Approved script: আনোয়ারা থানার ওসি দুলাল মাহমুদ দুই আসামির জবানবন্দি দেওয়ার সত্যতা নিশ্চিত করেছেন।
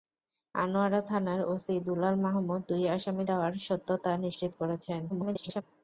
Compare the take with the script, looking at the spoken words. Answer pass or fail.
fail